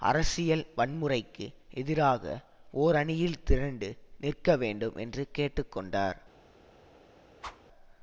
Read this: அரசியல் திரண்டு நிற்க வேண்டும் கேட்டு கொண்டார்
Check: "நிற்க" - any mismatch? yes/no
no